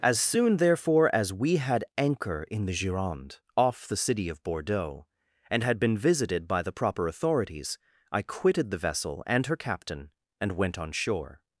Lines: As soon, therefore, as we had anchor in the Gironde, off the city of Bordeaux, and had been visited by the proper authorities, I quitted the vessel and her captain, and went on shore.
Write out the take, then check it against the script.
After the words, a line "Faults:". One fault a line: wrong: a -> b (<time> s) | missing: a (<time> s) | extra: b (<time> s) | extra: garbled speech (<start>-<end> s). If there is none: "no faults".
As soon, therefore, as we had anchor in the Gironde, off the city of Bordeaux, and had been visited by the proper authorities, I quitted the vessel and her captain, and went on shore.
Faults:
no faults